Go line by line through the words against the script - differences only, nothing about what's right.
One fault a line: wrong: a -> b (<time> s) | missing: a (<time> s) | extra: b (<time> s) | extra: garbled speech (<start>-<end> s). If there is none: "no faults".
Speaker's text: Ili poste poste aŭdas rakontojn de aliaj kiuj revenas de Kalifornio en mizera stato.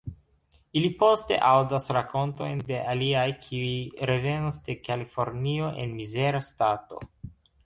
missing: poste (1.4 s)